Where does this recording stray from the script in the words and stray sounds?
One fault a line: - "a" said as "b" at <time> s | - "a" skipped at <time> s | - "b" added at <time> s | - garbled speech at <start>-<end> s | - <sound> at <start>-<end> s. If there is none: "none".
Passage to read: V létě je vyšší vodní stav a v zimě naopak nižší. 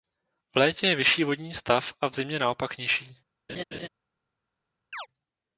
- laugh at 3.5-3.9 s
- chirp at 4.9-5.1 s